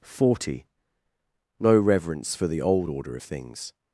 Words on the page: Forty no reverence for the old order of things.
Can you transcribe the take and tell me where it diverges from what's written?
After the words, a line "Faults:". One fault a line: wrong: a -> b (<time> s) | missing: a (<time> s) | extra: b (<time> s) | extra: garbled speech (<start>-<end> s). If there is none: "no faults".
Forty no reverence for the old order of things.
Faults:
no faults